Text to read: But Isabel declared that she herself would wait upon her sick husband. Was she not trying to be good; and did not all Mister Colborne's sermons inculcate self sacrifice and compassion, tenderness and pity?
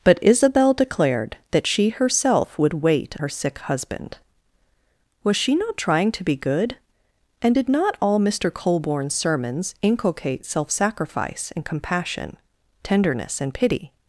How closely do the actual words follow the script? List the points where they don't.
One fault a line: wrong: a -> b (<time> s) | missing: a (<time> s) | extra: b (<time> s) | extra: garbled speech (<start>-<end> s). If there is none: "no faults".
missing: upon (3.1 s)